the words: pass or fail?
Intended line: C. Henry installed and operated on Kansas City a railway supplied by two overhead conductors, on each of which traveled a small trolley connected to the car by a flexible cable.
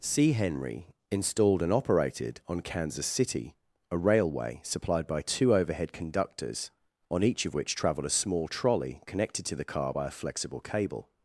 pass